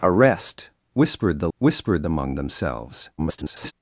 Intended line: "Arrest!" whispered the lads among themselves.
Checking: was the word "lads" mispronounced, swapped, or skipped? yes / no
yes